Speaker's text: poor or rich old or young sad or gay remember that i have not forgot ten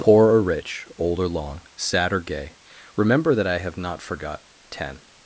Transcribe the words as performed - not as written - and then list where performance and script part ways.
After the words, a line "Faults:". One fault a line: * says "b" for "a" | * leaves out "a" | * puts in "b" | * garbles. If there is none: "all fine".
poor or rich old or long sad or gay remember that i have not forgot ten
Faults:
* says "long" for "young"